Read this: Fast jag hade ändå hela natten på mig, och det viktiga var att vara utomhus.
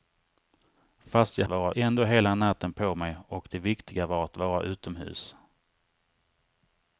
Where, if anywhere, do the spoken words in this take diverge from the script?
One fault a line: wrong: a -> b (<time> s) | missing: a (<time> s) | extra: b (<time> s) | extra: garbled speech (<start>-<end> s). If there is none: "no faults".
wrong: hade -> vara (1.5 s)